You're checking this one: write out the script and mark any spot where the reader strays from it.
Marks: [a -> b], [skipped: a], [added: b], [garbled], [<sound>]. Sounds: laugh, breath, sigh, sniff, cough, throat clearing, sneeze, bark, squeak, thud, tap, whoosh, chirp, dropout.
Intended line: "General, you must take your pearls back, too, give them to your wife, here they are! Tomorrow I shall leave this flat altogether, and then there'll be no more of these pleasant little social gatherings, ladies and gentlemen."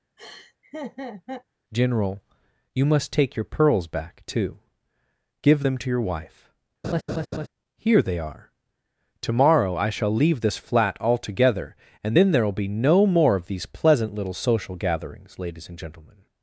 [laugh] "General, you must take your pearls back, too, give them to your wife, [laugh] here they are! Tomorrow I shall leave this flat altogether, and then there'll be no more of these pleasant little social gatherings, ladies and gentlemen."